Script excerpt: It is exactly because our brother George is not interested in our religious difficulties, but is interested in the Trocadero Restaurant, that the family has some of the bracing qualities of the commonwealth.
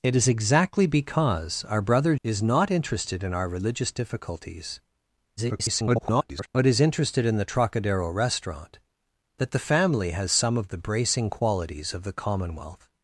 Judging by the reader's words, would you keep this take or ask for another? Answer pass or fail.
fail